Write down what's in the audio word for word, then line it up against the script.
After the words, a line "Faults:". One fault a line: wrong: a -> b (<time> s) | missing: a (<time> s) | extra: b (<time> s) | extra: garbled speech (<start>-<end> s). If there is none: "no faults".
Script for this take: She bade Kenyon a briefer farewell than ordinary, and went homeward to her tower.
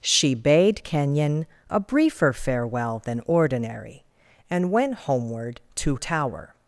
She bade Kenyon a briefer farewell than ordinary, and went homeward to tower.
Faults:
missing: her (6.0 s)